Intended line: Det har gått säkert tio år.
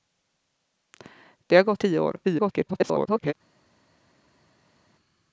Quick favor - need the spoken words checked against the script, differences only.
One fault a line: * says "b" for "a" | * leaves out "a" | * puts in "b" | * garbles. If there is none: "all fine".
* leaves out "säkert"
* garbles